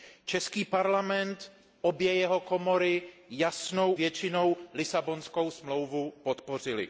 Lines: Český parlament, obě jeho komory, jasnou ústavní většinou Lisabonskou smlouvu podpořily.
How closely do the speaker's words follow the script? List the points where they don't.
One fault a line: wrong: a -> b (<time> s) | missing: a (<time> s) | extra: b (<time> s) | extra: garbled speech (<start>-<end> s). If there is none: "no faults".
missing: ústavní (3.9 s)